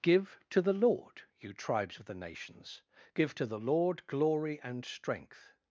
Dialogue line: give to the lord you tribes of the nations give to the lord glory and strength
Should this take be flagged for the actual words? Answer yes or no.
no